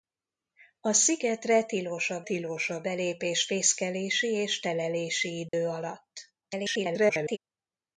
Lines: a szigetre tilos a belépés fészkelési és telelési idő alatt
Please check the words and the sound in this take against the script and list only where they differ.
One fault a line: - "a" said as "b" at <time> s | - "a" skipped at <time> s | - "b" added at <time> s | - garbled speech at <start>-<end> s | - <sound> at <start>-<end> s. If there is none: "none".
- "tilos a" added at 2.2 s
- dropout at 5.5-5.5 s
- garbled speech at 6.4-7.4 s